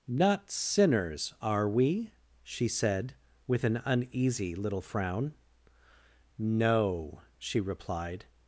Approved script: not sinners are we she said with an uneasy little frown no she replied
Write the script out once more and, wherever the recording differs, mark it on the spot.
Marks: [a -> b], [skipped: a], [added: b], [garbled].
not sinners are we she said with an uneasy little frown no she replied